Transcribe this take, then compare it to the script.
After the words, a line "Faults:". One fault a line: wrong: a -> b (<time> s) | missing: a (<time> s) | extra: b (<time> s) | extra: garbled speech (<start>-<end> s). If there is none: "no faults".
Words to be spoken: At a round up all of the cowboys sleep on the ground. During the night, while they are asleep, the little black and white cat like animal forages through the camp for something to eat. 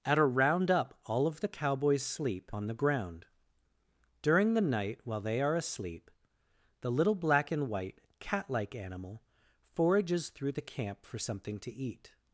At a round up all of the cowboys sleep on the ground. During the night, while they are asleep, the little black and white cat like animal forages through the camp for something to eat.
Faults:
no faults